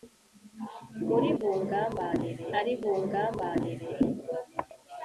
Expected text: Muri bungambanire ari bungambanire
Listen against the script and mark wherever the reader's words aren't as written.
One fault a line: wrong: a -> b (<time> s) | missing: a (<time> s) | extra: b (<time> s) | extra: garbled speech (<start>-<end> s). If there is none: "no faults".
no faults